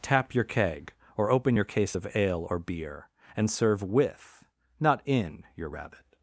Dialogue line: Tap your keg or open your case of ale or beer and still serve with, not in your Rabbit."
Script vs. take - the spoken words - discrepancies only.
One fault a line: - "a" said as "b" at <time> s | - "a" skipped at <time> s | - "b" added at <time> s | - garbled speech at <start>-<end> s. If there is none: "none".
- "still" skipped at 3.5 s